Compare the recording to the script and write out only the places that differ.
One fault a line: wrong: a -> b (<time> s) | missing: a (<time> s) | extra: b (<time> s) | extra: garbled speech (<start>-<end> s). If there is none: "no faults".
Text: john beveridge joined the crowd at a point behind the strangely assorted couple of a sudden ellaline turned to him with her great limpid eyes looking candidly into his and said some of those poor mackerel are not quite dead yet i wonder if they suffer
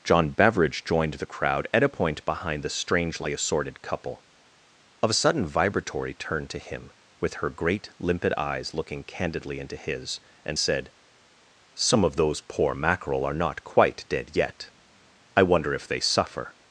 wrong: ellaline -> vibratory (5.5 s)